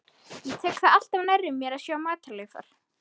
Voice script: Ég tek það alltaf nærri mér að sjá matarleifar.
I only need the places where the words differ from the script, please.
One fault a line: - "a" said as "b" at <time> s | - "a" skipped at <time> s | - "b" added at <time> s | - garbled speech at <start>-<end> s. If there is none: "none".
none